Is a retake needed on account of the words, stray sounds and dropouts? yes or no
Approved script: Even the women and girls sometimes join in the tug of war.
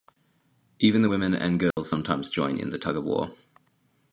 yes